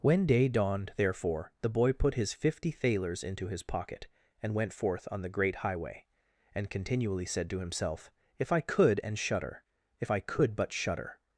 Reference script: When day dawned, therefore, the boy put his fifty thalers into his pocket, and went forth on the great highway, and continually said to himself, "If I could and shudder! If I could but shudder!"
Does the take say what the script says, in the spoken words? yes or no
yes